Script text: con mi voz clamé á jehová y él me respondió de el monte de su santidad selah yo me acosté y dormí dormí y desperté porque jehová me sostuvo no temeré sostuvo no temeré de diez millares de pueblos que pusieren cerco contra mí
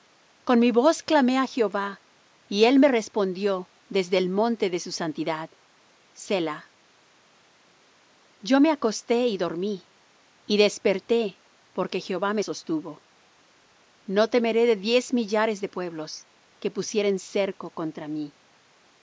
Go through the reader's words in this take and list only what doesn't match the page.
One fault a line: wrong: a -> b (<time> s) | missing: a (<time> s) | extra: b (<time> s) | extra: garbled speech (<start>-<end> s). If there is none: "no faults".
wrong: de -> desde (3.9 s)
missing: dormí (9.9 s)
missing: sostuvo no temeré (14.7 s)